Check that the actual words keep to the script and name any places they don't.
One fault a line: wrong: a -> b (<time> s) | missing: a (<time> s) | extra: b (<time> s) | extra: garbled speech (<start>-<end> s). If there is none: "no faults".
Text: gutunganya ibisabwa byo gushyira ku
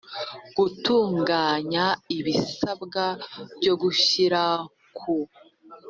no faults